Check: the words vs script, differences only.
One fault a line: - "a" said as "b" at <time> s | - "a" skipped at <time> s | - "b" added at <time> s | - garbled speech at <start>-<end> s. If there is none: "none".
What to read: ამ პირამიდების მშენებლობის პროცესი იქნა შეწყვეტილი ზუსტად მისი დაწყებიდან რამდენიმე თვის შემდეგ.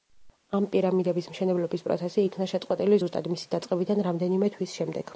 none